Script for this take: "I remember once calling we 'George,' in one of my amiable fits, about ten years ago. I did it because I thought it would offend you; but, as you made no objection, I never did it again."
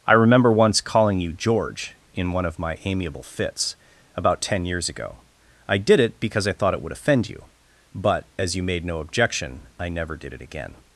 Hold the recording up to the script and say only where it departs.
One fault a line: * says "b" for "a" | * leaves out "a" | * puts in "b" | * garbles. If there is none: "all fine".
* says "you" for "we"